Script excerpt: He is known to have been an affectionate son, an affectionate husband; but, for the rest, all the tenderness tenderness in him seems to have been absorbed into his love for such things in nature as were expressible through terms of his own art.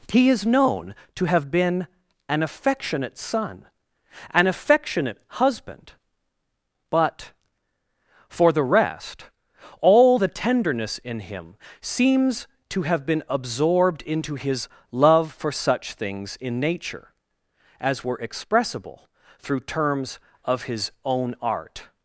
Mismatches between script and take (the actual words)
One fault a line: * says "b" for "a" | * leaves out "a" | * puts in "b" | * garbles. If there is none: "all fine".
* leaves out "tenderness"